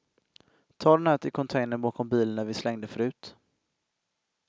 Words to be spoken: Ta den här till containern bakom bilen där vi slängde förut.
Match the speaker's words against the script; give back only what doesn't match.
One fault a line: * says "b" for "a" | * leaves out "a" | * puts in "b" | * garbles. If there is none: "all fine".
all fine